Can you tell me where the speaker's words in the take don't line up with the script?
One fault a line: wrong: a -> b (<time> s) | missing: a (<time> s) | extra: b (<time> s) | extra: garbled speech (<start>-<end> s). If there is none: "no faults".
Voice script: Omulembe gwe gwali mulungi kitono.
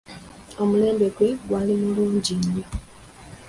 wrong: kitono -> nnyo (2.4 s)